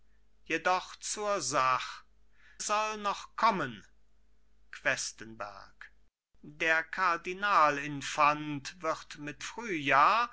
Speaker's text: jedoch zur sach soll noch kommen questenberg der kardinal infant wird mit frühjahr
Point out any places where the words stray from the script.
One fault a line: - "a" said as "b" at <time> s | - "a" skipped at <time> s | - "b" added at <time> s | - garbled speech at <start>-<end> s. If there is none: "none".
none